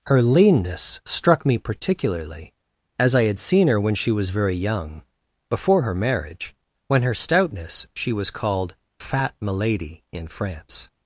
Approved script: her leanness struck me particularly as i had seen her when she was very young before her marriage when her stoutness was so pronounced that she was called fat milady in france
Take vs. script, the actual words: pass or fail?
fail